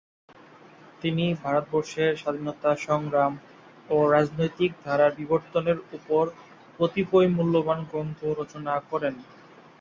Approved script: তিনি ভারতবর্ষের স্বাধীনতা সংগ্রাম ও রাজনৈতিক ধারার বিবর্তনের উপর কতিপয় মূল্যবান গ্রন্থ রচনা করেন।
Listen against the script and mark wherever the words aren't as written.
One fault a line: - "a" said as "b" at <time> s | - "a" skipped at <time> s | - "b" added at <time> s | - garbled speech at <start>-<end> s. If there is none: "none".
none